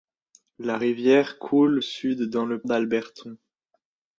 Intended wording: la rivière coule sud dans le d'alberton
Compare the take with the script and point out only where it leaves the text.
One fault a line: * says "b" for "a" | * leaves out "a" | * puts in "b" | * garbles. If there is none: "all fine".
all fine